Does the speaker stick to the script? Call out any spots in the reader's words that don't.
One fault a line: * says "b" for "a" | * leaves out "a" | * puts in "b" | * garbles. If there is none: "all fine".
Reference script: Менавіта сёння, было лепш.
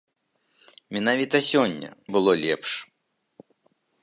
all fine